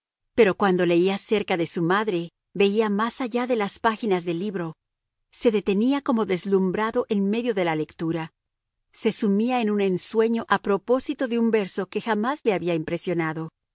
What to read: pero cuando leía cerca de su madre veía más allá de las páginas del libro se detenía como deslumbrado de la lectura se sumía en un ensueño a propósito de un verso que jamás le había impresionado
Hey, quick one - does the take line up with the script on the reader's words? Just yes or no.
no